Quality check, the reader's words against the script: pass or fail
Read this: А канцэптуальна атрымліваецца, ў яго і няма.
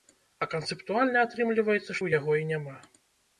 pass